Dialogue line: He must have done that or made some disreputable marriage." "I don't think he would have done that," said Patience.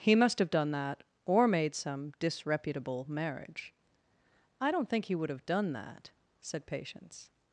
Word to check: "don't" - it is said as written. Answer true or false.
true